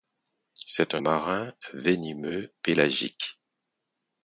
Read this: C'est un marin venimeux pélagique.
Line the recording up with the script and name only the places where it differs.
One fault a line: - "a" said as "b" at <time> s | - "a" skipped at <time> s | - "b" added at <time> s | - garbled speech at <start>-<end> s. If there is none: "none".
none